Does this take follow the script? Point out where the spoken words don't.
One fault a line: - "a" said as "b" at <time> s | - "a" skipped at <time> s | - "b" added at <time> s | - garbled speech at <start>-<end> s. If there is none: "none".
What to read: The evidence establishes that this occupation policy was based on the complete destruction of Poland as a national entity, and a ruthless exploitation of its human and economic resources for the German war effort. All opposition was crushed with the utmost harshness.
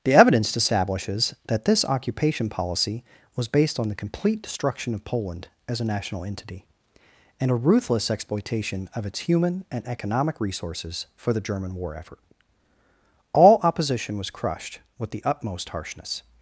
none